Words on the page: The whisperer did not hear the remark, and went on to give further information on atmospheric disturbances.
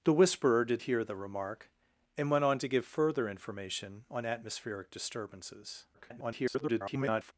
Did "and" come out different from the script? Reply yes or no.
no